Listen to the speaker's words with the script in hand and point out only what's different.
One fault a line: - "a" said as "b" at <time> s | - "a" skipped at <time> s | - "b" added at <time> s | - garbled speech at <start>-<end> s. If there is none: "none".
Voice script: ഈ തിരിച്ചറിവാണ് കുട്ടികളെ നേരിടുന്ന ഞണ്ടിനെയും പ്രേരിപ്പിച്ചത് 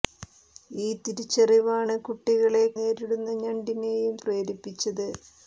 none